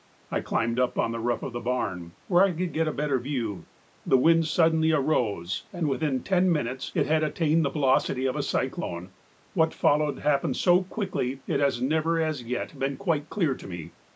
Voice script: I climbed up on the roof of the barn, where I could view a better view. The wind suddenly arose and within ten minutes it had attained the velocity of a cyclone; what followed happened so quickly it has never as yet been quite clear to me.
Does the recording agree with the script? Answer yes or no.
no